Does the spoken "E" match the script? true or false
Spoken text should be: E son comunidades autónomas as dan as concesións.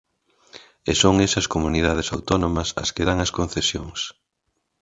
true